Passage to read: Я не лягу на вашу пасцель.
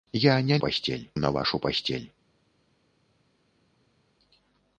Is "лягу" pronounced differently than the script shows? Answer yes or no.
yes